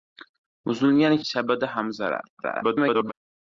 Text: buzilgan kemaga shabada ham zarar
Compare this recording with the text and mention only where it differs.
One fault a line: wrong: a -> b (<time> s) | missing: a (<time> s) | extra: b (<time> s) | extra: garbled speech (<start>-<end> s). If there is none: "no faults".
missing: kemaga (1.2 s)
extra: garbled speech (2.4-3.1 s)